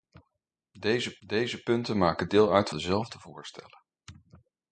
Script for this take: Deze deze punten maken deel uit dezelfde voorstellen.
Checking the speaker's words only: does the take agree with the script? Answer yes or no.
yes